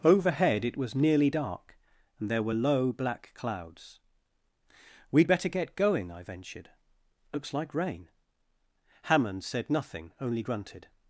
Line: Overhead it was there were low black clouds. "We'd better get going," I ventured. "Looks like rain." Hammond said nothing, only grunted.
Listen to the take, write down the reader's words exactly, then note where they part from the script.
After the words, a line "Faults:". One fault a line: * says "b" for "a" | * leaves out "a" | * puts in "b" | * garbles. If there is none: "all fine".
Overhead it was nearly dark, and there were low black clouds. "We'd better get going," I ventured. "Looks like rain." Hammond said nothing, only grunted.
Faults:
* puts in "nearly dark and"